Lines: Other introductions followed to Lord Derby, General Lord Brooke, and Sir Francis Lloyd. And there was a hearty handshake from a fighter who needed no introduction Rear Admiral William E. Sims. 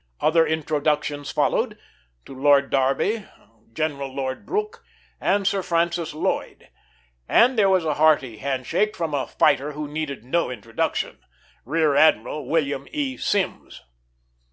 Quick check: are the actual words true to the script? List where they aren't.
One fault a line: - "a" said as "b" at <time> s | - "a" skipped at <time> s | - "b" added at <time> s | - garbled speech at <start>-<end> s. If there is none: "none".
none